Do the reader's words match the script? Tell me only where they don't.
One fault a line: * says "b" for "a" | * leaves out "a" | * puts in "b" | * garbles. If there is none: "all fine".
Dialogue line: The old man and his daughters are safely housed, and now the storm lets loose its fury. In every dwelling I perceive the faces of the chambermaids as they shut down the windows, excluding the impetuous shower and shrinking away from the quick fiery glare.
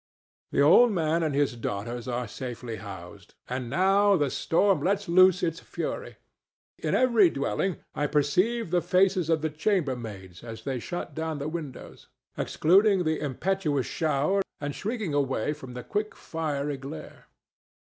all fine